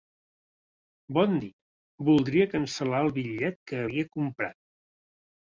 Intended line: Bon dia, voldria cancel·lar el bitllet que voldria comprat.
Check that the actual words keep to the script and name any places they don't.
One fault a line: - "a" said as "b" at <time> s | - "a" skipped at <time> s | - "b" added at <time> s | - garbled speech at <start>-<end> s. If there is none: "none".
- "voldria" said as "havia" at 3.9 s